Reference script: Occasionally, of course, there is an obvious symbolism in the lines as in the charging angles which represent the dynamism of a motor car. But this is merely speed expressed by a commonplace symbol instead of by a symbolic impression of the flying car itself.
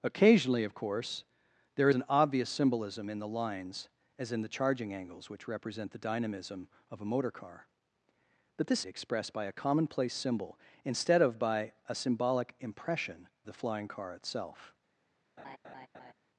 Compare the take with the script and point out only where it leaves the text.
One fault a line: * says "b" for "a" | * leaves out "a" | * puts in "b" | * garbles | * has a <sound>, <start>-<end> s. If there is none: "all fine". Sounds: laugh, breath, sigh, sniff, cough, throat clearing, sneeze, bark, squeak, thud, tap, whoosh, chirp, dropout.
* leaves out "is"
* leaves out "is merely speed"
* leaves out "of"
* has a laugh, 15.4-16.1 s